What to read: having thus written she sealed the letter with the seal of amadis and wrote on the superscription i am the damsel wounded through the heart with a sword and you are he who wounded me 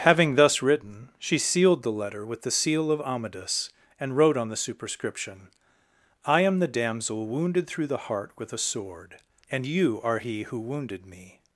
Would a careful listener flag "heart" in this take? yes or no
no